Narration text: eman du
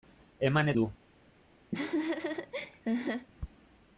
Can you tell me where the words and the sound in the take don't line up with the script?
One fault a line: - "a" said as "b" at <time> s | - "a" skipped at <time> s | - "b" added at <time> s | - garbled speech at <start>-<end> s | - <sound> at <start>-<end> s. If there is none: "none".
- laugh at 1.7-3.3 s